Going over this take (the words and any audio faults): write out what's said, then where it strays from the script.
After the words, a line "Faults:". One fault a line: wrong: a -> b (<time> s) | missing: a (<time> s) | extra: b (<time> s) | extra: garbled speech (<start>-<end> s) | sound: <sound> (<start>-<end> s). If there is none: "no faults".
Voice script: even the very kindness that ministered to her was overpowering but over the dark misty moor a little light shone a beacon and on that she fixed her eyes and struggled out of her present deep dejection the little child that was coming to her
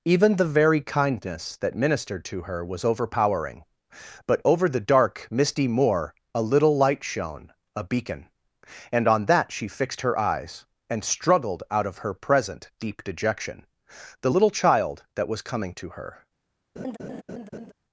even the very kindness that ministered to her was overpowering but over the dark misty moor a little light shone a beacon and on that she fixed her eyes and struggled out of her present deep dejection the little child that was coming to her
Faults:
sound: laugh (16.8-17.7 s)